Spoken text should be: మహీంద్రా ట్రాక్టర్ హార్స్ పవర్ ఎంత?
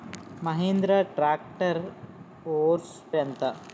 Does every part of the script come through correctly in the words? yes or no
no